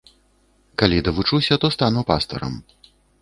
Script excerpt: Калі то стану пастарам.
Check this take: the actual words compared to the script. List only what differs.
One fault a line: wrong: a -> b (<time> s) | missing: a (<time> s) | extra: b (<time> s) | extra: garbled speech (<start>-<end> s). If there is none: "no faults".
extra: давучуся (1.1 s)